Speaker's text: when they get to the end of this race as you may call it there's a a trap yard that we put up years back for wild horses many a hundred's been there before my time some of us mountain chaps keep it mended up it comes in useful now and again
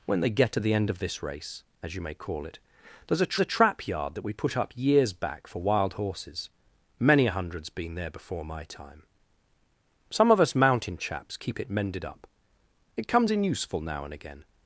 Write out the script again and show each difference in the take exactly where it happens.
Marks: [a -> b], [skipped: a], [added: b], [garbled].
when they get to the end of this race as you may call it there's a a trap yard that we put up years back for wild horses many a hundred's been there before my time some of us mountain chaps keep it mended up it comes in useful now and again